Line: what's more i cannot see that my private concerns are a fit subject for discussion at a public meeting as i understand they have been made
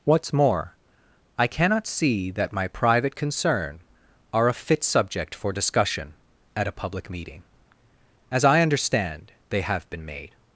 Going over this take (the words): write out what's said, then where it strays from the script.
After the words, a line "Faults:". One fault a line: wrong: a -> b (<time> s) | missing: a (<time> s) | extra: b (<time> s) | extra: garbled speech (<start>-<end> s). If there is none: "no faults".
what's more i cannot see that my private concern are a fit subject for discussion at a public meeting as i understand they have been made
Faults:
wrong: concerns -> concern (3.1 s)